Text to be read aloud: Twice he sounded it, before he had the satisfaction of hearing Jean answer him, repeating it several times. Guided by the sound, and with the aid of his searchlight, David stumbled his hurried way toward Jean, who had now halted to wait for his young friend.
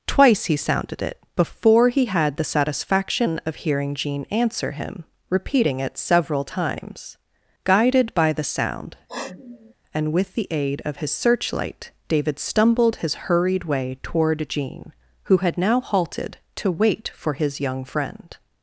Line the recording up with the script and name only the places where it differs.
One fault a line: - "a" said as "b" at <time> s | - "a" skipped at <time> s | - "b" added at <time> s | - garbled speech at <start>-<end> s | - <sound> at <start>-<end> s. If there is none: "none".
- sniff at 9.1-9.7 s